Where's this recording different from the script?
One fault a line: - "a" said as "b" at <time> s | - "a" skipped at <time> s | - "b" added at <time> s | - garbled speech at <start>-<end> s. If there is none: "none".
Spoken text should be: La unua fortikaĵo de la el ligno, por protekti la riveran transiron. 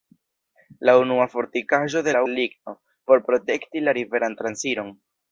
none